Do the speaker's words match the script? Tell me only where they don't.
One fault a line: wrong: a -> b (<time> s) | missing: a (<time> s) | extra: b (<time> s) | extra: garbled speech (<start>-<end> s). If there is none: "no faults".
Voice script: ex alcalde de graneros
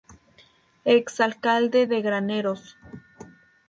no faults